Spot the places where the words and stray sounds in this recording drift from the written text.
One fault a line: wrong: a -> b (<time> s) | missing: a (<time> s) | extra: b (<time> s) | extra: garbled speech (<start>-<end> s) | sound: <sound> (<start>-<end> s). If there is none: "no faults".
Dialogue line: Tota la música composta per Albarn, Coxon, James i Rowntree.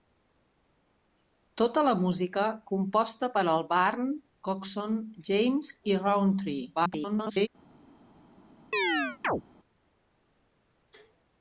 extra: garbled speech (6.7-7.5 s)
sound: chirp (8.7-9.4 s)